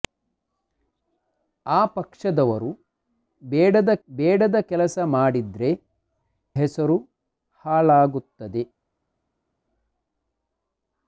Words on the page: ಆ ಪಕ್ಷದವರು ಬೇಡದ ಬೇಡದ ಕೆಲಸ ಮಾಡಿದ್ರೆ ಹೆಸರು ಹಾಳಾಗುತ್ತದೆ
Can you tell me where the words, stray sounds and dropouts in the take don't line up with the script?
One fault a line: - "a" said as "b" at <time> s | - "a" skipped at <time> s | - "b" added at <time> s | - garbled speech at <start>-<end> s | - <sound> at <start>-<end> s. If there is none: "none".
none